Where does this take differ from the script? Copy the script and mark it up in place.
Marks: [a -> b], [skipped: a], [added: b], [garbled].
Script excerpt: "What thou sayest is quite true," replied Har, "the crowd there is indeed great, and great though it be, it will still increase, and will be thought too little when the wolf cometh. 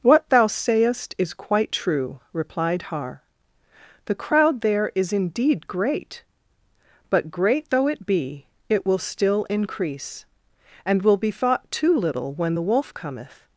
"What thou sayest is quite true," replied Har, "the crowd there is indeed great, [and -> but] great though it be, it will still increase, and will be thought too little when the wolf cometh.